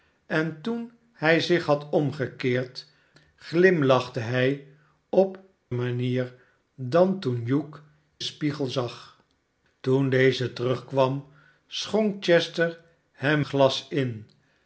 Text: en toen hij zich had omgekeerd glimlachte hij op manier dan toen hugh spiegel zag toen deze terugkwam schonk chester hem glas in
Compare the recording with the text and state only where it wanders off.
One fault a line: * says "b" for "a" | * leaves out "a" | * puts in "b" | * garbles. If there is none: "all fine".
all fine